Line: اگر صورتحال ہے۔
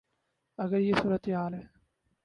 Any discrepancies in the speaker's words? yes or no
yes